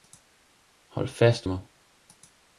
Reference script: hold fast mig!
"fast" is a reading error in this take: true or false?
false